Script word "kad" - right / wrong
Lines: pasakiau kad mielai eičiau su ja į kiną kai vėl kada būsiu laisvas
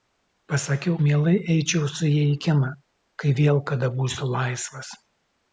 wrong